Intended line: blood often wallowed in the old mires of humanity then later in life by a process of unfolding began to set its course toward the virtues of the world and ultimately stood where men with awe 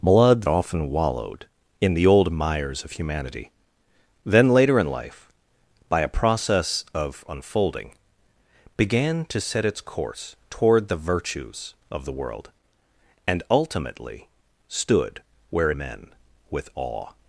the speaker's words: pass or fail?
pass